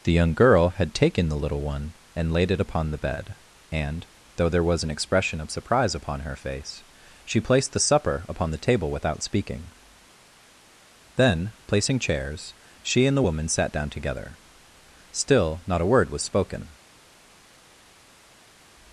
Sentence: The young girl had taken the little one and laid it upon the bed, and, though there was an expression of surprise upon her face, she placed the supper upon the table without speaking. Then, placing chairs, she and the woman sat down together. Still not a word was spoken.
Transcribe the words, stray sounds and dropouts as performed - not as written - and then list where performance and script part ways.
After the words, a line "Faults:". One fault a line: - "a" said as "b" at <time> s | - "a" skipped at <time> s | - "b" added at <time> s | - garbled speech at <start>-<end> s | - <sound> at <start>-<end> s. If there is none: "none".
The young girl had taken the little one and laid it upon the bed, and, though there was an expression of surprise upon her face, she placed the supper upon the table without speaking. Then, placing chairs, she and the woman sat down together. Still not a word was spoken.
Faults:
none